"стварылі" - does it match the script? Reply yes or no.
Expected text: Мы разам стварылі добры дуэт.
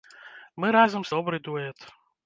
no